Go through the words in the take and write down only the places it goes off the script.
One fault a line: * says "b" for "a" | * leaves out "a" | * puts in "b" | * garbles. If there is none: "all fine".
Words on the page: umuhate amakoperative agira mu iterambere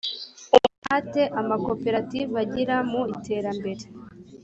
all fine